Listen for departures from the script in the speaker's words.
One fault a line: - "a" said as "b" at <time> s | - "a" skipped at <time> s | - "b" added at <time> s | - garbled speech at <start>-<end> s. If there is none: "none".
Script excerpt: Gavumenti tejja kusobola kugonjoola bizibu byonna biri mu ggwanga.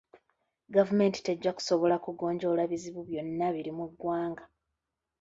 none